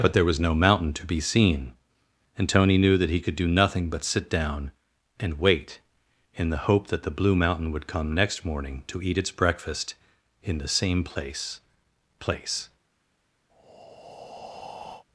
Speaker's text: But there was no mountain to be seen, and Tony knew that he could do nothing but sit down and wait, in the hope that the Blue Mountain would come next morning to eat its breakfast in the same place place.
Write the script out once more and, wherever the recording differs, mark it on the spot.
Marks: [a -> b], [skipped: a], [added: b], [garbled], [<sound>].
But there was no mountain to be seen, and Tony knew that he could do nothing but sit down and wait, in the hope that the Blue Mountain would come next morning to eat its breakfast in the same place place. [breath]